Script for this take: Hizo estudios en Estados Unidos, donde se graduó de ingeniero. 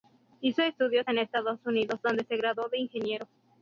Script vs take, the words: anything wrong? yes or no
no